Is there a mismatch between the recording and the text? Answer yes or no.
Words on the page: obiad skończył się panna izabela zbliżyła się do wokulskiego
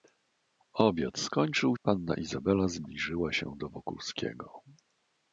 yes